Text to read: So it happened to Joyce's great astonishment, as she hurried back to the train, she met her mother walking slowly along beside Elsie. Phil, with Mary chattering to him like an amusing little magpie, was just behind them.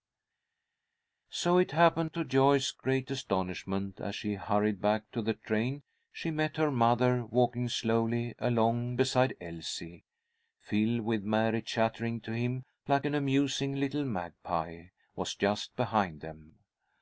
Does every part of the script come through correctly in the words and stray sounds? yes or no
yes